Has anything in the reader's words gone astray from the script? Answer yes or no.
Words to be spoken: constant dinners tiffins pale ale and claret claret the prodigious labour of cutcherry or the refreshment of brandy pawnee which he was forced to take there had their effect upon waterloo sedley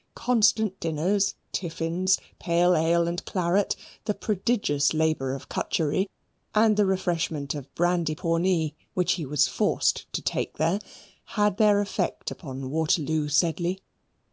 yes